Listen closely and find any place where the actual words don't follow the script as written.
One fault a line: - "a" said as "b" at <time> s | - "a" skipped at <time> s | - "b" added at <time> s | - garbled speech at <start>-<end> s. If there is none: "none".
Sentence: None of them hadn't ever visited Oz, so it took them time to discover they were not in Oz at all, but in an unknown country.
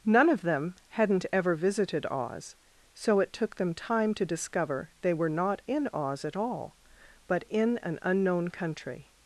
none